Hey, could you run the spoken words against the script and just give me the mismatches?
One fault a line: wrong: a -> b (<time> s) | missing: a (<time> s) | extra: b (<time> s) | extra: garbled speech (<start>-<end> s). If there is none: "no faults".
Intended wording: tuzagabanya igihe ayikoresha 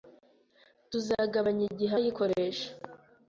no faults